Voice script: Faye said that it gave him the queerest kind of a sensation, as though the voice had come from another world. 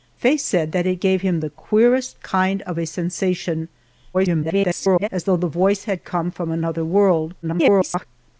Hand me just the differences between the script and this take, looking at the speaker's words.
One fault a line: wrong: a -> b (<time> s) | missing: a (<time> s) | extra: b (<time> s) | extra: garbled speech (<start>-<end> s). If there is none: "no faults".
extra: garbled speech (4.1-5.1 s)
extra: garbled speech (7.4-8.1 s)